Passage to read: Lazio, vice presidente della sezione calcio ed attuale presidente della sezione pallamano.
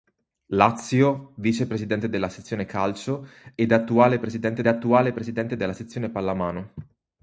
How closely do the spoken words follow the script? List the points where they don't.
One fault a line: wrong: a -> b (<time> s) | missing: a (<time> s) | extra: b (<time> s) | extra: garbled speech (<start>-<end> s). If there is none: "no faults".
extra: attuale presidente (4.7 s)